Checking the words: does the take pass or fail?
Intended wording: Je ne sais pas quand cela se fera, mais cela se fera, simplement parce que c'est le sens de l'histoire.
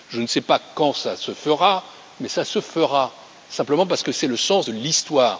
pass